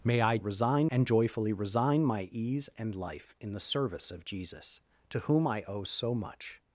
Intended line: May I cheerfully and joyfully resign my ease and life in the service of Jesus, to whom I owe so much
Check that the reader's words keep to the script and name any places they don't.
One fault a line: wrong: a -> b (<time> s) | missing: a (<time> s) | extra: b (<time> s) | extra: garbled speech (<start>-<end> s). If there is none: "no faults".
wrong: cheerfully -> resign (0.4 s)